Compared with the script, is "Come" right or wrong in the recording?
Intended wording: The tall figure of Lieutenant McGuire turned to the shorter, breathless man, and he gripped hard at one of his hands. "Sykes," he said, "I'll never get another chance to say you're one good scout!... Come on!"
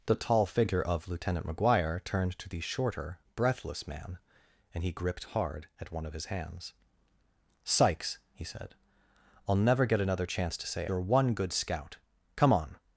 right